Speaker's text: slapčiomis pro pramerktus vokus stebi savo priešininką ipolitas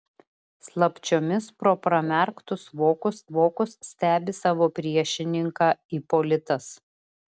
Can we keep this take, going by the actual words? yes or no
no